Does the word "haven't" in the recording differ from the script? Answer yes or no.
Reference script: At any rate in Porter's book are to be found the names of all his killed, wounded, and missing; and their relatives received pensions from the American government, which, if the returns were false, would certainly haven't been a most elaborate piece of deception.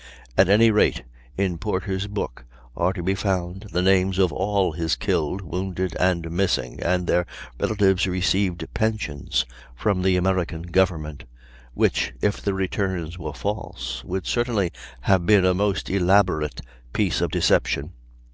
yes